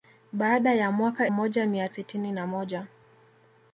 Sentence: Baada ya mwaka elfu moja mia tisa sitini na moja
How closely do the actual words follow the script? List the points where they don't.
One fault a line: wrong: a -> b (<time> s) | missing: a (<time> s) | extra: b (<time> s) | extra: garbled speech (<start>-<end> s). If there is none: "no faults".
missing: elfu (1.3 s)
missing: tisa (1.9 s)